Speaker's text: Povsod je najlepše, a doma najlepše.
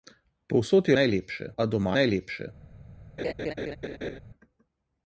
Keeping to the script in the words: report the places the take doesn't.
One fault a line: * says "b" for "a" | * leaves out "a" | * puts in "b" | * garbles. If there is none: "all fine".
all fine